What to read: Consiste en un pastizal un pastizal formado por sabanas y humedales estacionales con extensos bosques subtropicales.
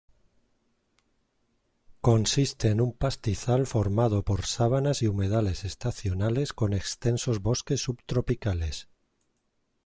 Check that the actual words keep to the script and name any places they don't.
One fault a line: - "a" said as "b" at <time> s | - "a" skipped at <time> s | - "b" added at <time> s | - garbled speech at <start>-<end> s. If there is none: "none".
- "un pastizal" skipped at 3.7 s